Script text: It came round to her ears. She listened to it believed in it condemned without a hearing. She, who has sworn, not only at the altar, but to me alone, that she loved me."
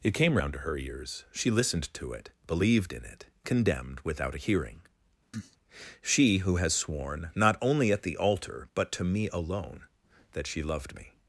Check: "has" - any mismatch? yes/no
no